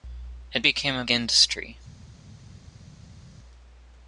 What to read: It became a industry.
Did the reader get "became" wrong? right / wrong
right